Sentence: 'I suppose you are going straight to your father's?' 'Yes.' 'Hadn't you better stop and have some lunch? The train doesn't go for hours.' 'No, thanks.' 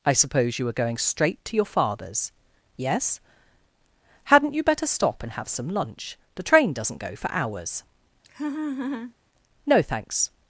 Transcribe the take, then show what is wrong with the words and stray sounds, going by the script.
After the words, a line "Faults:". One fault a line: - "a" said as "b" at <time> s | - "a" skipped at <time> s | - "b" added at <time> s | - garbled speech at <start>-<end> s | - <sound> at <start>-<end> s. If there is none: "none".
'I suppose you were going straight to your father's?' 'Yes.' 'Hadn't you better stop and have some lunch? The train doesn't go for hours.' 'No, thanks.'
Faults:
- "are" said as "were" at 0.7 s
- laugh at 8.2-9.1 s